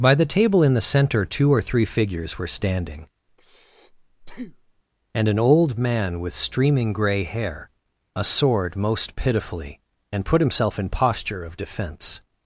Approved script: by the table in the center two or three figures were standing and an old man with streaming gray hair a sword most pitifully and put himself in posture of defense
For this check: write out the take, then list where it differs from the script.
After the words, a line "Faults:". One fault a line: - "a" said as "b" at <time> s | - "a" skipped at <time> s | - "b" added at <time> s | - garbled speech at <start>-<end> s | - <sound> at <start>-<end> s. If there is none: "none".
by the table in the center two or three figures were standing and an old man with streaming gray hair a sword most pitifully and put himself in posture of defense
Faults:
- breath at 3.3-4.8 s